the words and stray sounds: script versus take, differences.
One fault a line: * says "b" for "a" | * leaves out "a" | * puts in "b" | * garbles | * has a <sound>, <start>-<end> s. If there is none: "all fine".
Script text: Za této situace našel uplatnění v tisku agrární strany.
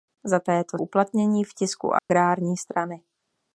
* leaves out "situace našel"
* has a dropout, 2.0-2.1 s